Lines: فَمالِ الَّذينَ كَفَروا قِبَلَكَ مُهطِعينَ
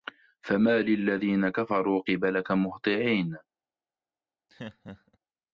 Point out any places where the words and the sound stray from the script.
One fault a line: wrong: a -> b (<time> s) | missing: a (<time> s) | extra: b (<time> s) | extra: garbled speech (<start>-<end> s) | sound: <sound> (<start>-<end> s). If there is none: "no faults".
sound: laugh (4.5-5.2 s)